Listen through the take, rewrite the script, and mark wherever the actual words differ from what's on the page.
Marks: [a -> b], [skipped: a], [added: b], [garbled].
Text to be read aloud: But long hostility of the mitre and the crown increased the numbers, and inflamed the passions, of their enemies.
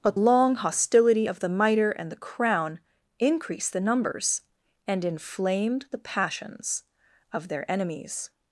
But long hostility of the mitre and the crown increased the numbers, and inflamed the passions, of their enemies.